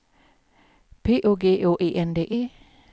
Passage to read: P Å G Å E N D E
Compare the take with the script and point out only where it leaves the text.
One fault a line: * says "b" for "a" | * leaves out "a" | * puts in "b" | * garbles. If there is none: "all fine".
all fine